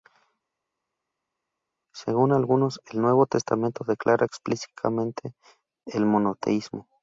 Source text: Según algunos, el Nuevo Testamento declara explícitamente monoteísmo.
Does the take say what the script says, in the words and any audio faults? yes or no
no